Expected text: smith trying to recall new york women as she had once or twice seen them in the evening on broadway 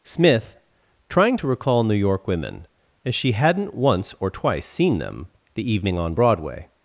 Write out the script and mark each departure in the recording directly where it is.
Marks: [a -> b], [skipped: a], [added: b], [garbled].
smith trying to recall new york women as she [had -> hadn't] once or twice seen them [skipped: in] the evening on broadway